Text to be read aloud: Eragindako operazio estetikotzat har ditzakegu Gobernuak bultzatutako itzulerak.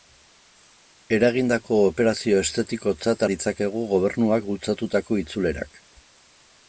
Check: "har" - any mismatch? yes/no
yes